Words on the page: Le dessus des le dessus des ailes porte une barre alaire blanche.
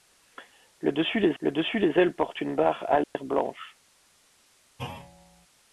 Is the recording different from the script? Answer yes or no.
no